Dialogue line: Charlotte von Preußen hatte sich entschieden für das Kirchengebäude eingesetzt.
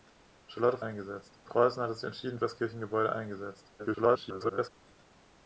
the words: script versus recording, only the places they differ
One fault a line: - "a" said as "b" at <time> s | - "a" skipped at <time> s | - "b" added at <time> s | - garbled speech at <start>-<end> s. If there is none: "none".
- "von" said as "eingesetzt" at 0.8 s
- "für" skipped at 2.4 s
- garbled speech at 3.8-4.7 s